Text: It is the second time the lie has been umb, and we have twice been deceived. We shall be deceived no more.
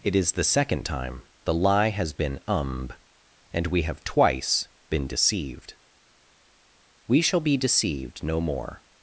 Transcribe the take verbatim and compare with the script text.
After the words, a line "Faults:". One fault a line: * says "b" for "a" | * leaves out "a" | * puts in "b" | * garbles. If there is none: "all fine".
It is the second time the lie has been umb, and we have twice been deceived. We shall be deceived no more.
Faults:
all fine